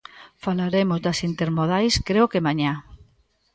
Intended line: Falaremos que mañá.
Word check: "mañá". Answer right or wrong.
right